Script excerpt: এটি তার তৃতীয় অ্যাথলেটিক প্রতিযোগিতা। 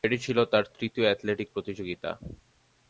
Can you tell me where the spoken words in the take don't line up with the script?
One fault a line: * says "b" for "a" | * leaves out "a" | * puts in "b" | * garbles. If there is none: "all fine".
* puts in "ছিল"